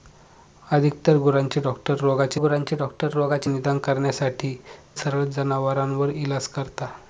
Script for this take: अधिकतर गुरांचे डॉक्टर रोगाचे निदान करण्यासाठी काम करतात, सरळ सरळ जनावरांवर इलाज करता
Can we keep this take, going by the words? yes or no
no